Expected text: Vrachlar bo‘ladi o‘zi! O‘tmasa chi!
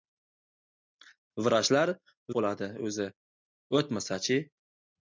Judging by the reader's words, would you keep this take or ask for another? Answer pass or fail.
pass